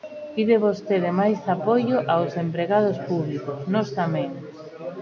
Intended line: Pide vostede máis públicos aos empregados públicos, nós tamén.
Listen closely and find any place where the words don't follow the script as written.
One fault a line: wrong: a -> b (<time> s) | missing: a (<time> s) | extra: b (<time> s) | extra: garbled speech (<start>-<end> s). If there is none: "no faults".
wrong: públicos -> apoio (1.6 s)